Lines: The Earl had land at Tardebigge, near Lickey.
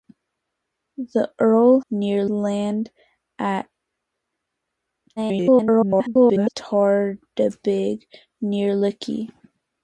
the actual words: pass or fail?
fail